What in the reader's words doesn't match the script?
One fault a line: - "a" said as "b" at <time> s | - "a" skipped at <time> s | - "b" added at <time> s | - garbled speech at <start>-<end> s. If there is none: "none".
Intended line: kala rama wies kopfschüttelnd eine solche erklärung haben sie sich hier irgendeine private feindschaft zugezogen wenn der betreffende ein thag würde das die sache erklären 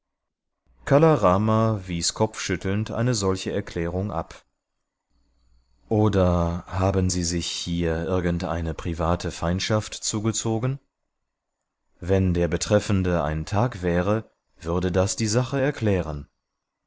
- "ab oder" added at 4.1 s
- "wäre" added at 13.8 s